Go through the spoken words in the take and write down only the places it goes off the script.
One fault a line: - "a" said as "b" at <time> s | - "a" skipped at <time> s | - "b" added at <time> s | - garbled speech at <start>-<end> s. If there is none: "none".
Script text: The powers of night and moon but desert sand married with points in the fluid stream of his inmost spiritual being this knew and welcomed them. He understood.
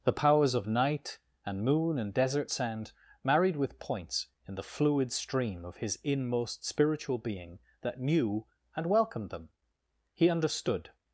- "but" said as "and" at 2.0 s
- "this" said as "that" at 7.8 s